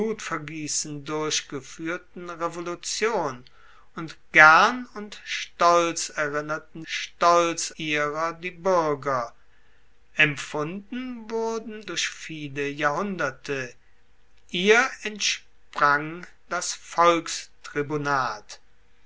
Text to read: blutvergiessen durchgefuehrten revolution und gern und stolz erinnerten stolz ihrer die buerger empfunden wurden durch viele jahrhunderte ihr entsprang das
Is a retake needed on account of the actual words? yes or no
no